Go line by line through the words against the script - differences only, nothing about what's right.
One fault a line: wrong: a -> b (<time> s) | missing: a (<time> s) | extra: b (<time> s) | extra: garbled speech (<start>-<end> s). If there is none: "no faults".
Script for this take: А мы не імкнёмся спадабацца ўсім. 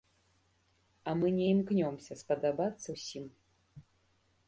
no faults